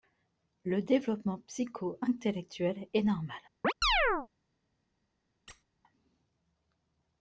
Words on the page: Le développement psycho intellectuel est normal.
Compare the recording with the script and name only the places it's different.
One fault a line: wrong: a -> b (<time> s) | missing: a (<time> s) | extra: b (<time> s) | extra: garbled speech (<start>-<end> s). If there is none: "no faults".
no faults